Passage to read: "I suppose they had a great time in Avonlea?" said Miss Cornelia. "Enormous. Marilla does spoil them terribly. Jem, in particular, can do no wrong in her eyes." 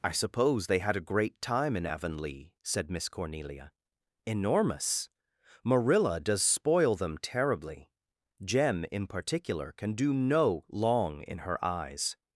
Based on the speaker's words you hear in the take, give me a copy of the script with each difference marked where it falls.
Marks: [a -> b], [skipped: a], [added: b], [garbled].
"I suppose they had a great time in Avonlea?" said Miss Cornelia. "Enormous. Marilla does spoil them terribly. Jem, in particular, can do no [wrong -> long] in her eyes."